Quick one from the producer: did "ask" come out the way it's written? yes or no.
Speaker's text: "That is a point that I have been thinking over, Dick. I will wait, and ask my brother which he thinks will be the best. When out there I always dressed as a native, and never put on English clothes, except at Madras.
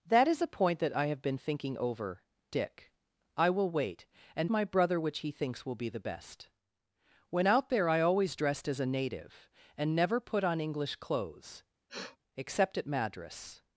no